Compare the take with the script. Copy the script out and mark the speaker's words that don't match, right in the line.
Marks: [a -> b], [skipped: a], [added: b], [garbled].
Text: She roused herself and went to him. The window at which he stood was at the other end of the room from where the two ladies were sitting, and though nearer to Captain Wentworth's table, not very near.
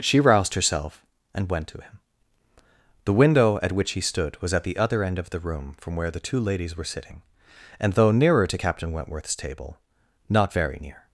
She roused herself and went to him. The window at which he stood was at the other end of the room from where the two ladies were sitting, and though nearer to Captain Wentworth's table, not very near.